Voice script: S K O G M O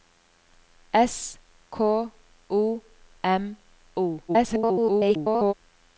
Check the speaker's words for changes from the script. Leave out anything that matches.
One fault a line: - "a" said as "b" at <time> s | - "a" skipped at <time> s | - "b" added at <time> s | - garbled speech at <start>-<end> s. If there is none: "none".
- "G" skipped at 2.8 s
- garbled speech at 4.3-5.5 s